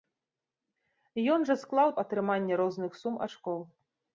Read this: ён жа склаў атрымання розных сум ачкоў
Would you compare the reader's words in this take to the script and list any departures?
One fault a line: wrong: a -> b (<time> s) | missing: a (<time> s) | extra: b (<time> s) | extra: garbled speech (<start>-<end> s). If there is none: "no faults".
no faults